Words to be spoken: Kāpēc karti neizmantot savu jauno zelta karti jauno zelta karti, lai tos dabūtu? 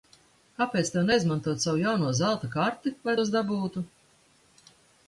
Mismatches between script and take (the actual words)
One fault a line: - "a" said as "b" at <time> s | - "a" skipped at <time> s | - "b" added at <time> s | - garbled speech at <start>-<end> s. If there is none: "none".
- "karti" said as "tev" at 0.9 s
- "jauno zelta karti" skipped at 3.0 s